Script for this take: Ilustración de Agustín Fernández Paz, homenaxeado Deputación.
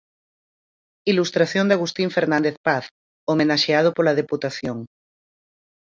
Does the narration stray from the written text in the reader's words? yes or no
yes